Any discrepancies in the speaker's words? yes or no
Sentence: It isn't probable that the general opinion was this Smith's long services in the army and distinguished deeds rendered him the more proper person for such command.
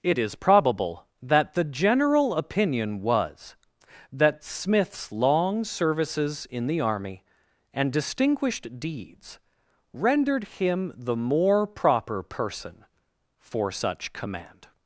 yes